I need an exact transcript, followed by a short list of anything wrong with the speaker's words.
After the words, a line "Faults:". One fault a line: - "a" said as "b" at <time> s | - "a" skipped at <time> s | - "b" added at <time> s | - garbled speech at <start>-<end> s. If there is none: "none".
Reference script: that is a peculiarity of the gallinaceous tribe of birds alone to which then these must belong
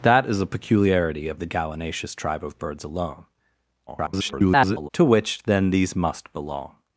that is a peculiarity of the gallinaceous tribe of birds alone [garbled] to which then these must belong
Faults:
- garbled speech at 3.9-4.9 s